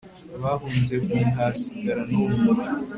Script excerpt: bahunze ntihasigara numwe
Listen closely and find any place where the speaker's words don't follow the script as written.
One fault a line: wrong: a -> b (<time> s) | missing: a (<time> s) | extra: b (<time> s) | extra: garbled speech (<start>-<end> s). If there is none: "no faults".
no faults